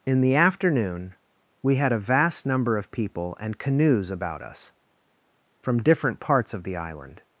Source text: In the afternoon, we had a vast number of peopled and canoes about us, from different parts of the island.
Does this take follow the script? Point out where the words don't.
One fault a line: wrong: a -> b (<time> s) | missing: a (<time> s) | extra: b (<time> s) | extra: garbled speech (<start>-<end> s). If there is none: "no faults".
wrong: peopled -> people (2.9 s)